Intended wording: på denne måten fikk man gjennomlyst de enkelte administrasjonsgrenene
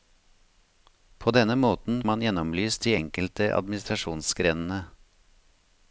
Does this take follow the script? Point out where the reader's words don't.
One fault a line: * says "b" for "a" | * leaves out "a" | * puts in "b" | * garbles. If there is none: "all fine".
* leaves out "fikk"